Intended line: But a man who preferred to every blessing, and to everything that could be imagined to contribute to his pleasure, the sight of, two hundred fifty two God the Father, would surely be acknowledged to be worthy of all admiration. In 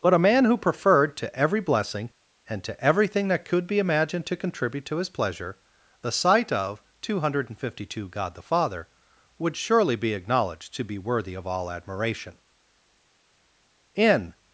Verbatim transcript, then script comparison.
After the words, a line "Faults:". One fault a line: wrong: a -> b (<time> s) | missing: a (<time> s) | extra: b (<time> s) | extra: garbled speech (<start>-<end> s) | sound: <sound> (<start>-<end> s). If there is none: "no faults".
But a man who preferred to every blessing, and to everything that could be imagined to contribute to his pleasure, the sight of, two hundred fifty two God the Father, would surely be acknowledged to be worthy of all admiration. In
Faults:
no faults